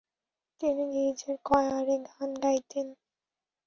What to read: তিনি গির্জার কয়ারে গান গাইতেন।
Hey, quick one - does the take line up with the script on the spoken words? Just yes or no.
yes